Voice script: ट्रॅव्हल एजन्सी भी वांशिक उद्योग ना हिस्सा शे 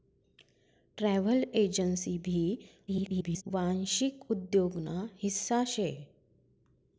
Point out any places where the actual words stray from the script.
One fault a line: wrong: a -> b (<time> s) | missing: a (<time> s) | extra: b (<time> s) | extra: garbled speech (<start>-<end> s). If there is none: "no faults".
extra: garbled speech (2.9-3.4 s)